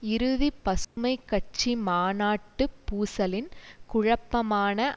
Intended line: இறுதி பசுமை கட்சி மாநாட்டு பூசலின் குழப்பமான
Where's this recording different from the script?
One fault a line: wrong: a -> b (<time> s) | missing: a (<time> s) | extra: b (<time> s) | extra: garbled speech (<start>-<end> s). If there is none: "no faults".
no faults